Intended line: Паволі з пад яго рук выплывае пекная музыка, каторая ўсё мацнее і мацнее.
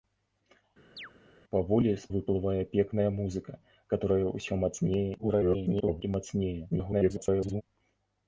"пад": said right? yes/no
no